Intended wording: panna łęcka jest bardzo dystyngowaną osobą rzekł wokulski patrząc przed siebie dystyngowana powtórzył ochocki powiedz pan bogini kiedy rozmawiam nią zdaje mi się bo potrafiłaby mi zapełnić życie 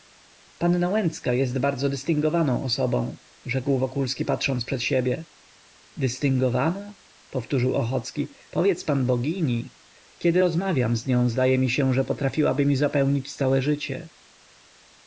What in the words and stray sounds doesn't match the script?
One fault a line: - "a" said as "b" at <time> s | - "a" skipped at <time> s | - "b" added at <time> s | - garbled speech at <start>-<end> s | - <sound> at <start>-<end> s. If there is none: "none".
- "z" added at 10.9 s
- "bo" said as "że" at 11.9 s
- "całe" added at 13.3 s